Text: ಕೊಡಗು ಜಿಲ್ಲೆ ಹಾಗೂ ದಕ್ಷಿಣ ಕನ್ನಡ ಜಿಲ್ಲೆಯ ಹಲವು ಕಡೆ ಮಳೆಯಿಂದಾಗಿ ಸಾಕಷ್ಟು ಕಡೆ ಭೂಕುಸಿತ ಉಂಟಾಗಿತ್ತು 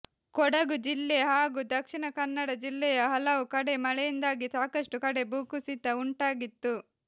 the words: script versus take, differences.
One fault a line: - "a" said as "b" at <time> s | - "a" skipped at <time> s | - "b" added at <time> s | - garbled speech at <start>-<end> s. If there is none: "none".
none